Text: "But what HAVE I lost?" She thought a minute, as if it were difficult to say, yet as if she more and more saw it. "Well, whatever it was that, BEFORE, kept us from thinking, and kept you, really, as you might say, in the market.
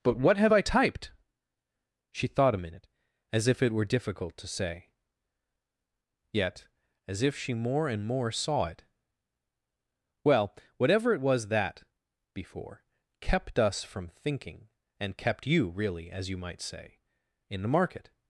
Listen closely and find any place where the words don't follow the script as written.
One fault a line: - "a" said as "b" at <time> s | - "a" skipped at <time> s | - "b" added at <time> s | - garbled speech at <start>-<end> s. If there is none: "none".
- "lost" said as "typed" at 0.6 s